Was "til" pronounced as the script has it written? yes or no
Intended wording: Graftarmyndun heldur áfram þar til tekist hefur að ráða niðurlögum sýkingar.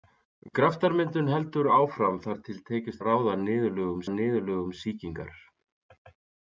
yes